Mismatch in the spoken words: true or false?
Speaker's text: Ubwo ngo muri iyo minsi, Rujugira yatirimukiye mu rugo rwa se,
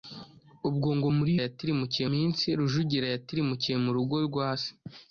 true